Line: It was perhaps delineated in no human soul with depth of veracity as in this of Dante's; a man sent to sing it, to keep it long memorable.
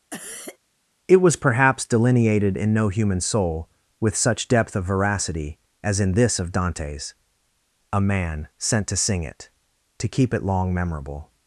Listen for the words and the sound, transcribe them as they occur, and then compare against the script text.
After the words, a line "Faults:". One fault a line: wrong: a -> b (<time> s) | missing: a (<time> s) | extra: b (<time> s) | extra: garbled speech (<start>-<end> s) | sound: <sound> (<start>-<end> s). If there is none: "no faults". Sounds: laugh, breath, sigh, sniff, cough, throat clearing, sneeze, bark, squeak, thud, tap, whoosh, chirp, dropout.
It was perhaps delineated in no human soul with such depth of veracity as in this of Dante's; a man sent to sing it, to keep it long memorable.
Faults:
sound: cough (0.1-0.6 s)
extra: such (4.2 s)